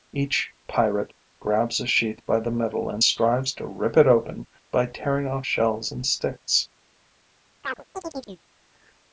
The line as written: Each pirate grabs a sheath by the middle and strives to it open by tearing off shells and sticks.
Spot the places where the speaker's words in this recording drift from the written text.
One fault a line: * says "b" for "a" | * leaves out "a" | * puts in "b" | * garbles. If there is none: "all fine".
* puts in "rip"